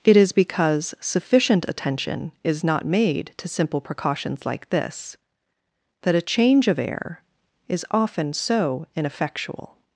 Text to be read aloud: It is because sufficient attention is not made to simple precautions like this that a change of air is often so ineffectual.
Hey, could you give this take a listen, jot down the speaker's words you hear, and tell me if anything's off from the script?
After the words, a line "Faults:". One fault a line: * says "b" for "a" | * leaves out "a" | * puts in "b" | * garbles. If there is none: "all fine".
It is because sufficient attention is not made to simple precautions like this that a change of air is often so ineffectual.
Faults:
all fine